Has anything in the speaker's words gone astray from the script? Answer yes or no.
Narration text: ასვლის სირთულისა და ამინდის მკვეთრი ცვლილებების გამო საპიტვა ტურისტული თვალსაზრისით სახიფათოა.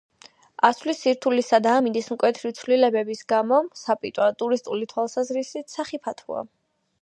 no